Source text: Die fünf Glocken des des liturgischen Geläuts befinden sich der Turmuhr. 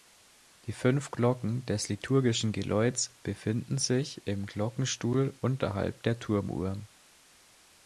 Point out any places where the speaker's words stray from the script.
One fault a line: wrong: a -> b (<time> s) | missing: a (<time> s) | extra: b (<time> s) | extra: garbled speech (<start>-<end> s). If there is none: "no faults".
missing: des (1.9 s)
extra: im Glockenstuhl unterhalb (4.3 s)